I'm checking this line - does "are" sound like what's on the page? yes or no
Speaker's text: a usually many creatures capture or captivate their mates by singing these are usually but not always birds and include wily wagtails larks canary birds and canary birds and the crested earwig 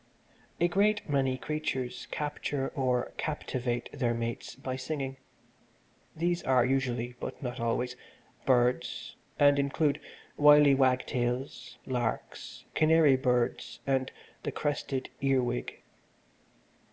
yes